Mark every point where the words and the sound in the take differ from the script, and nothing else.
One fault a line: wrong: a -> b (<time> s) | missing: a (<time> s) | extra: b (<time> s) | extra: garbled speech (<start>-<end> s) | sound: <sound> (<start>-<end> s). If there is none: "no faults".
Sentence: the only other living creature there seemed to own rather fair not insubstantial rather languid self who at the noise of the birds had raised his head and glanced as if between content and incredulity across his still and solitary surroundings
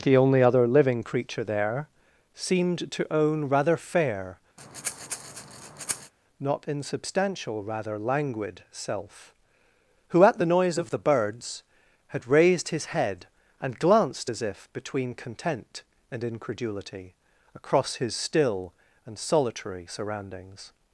sound: breath (4.6-6.1 s)